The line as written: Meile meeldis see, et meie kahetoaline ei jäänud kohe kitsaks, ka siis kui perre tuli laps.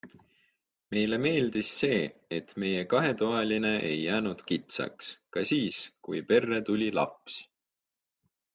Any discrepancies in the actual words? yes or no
yes